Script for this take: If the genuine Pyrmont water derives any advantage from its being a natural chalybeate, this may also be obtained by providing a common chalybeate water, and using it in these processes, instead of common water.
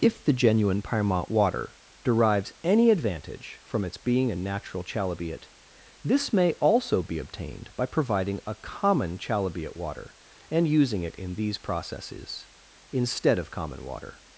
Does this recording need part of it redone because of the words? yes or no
no